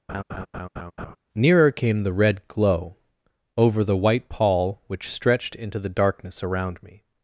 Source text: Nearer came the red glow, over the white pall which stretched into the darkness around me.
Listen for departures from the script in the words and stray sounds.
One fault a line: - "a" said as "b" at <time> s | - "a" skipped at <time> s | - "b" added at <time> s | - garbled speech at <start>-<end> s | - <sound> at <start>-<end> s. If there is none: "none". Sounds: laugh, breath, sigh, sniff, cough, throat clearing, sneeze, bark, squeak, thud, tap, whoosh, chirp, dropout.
- laugh at 0.1-1.2 s